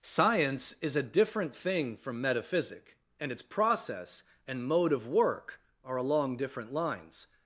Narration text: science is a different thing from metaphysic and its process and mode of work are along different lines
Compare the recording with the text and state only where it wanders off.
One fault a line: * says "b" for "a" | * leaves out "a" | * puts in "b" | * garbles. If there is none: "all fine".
all fine